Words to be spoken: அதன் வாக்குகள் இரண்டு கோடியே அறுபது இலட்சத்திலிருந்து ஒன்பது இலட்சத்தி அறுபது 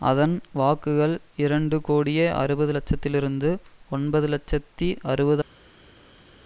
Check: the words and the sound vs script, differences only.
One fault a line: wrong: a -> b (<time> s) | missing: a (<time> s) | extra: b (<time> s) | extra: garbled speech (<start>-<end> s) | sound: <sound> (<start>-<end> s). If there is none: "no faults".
no faults